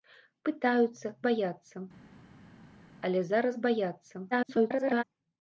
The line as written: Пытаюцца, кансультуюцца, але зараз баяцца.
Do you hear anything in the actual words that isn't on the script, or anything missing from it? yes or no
yes